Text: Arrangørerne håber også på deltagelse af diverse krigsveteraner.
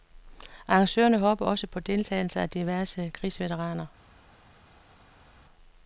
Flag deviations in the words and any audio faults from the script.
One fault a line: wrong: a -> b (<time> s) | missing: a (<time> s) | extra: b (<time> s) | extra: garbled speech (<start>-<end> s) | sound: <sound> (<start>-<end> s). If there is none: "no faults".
no faults